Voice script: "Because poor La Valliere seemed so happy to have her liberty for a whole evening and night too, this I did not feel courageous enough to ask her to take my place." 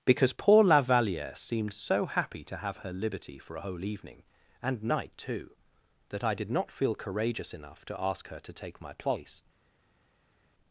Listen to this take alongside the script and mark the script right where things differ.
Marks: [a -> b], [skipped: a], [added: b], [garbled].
"Because poor La Valliere seemed so happy to have her liberty for a whole evening and night too, [this -> that] I did not feel courageous enough to ask her to take my place."